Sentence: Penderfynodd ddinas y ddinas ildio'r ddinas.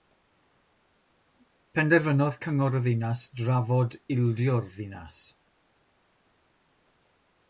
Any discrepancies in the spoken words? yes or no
yes